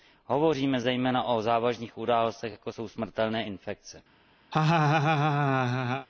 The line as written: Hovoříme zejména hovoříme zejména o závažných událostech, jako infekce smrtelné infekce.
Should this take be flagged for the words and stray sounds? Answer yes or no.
yes